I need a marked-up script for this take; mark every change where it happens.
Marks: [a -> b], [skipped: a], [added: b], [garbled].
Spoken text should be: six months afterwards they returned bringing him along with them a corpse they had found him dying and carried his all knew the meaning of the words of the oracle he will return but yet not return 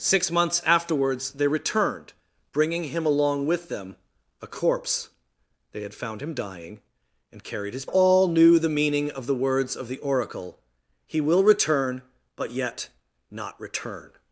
six months afterwards they returned bringing him along with them a corpse they had found him dying and carried his all knew the meaning of the words of the oracle he will return but yet not return